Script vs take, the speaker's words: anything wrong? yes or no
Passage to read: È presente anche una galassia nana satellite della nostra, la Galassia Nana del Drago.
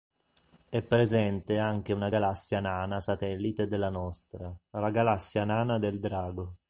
no